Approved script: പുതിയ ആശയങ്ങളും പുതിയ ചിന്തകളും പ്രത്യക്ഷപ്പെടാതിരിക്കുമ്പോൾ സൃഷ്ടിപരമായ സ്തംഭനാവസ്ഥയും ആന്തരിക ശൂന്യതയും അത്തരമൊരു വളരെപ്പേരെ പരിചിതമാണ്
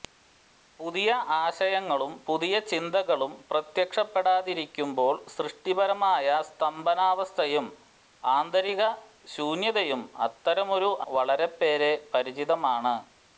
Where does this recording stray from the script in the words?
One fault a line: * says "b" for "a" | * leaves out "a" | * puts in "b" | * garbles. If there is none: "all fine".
all fine